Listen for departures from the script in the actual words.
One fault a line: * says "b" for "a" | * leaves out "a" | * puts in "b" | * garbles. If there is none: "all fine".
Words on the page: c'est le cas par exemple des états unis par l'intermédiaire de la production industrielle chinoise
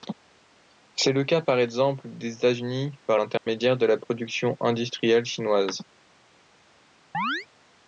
all fine